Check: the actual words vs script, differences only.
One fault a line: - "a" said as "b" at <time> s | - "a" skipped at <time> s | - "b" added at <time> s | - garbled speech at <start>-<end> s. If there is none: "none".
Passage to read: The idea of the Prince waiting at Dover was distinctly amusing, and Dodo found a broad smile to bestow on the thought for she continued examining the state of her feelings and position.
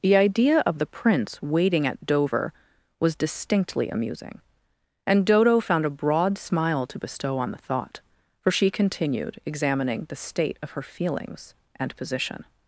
none